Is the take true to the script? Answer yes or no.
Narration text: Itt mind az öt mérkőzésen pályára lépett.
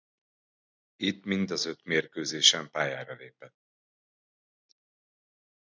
yes